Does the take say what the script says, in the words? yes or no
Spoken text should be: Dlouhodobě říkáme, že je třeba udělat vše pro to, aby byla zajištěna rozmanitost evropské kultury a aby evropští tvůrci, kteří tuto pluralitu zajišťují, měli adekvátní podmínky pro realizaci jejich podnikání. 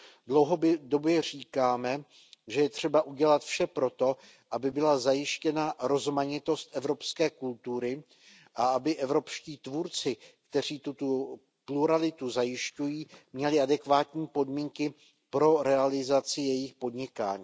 yes